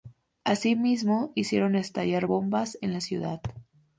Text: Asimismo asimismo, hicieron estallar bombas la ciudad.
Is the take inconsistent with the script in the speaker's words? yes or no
yes